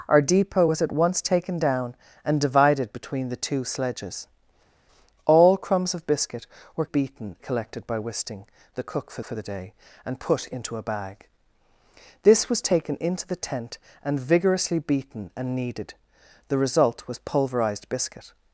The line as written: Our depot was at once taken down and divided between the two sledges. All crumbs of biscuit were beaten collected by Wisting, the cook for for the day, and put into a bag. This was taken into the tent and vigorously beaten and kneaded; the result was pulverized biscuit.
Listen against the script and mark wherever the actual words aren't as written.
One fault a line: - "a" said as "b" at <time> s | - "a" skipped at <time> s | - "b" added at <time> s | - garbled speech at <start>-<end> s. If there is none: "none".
none